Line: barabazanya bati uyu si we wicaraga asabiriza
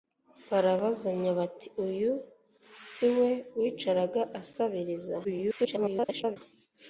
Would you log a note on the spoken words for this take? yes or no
yes